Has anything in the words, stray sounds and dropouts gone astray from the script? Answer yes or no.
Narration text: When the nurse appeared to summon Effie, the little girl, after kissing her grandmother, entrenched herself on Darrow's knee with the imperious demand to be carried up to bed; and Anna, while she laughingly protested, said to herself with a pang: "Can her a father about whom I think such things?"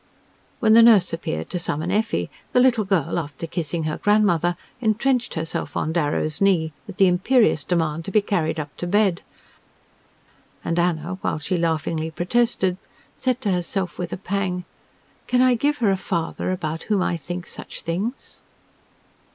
yes